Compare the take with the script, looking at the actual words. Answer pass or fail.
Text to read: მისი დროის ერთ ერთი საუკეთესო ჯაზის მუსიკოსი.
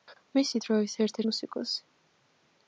fail